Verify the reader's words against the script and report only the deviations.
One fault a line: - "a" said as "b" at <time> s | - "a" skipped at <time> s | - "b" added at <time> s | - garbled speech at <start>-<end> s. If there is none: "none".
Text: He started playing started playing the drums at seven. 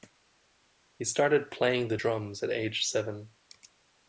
- "started playing" skipped at 1.9 s
- "age" added at 2.5 s